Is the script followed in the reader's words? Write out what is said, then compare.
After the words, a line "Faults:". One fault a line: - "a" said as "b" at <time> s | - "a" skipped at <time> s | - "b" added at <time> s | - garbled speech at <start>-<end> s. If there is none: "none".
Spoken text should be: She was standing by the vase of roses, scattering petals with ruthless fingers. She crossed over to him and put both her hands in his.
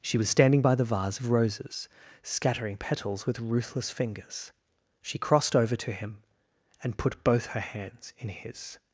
She was standing by the vase of roses, scattering petals with ruthless fingers. She crossed over to him and put both her hands in his.
Faults:
none